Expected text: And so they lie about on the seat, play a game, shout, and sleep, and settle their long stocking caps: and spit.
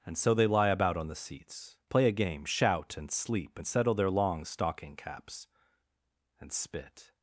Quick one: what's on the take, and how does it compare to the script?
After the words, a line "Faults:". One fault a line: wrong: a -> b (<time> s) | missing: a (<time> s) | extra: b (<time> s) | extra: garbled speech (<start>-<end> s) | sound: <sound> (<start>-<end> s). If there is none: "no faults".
And so they lie about on the seats, play a game, shout, and sleep, and settle their long stocking caps: and spit.
Faults:
wrong: seat -> seats (1.1 s)